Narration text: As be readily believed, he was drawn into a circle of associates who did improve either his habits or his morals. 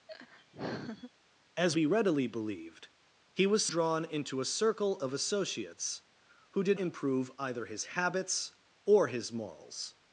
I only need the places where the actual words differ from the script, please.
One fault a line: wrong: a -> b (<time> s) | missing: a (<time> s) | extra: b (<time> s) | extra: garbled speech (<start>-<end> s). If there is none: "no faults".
no faults